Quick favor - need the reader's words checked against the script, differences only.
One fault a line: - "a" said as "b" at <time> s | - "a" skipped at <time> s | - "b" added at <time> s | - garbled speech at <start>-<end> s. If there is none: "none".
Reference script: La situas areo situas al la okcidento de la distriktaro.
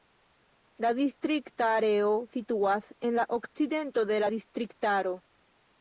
- "situas" said as "distrikta" at 1.0 s
- "al" said as "en" at 3.1 s